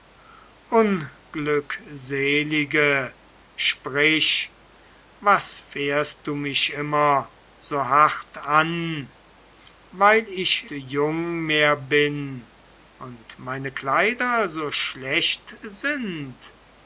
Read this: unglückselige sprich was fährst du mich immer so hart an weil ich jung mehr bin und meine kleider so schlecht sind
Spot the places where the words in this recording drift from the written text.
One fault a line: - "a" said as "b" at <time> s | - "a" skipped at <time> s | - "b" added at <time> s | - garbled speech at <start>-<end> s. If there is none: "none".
none